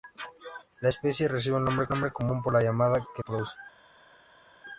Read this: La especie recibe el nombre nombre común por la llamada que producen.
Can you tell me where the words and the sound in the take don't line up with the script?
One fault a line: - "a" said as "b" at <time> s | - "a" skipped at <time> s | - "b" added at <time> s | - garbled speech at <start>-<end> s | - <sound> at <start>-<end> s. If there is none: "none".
none